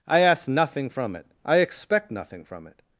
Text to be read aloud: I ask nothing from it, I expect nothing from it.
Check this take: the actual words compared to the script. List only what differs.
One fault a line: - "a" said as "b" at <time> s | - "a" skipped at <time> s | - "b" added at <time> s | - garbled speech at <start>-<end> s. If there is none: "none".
none